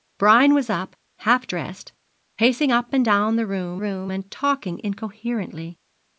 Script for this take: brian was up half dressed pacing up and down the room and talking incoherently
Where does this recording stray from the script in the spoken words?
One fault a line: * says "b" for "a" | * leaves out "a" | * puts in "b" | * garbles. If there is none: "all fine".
* puts in "room"